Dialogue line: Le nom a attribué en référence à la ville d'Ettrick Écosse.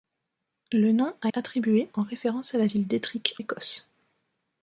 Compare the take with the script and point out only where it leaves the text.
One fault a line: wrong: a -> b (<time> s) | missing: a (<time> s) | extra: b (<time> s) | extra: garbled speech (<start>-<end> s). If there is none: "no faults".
no faults